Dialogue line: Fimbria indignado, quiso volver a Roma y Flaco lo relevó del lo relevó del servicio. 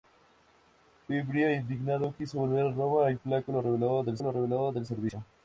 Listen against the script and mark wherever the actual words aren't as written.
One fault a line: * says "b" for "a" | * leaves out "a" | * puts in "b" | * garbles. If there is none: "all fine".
all fine